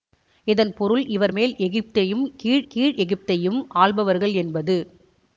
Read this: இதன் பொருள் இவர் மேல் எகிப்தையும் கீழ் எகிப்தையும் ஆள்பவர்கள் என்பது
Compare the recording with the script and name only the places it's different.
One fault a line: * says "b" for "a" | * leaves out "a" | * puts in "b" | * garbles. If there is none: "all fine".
* puts in "கீழ்"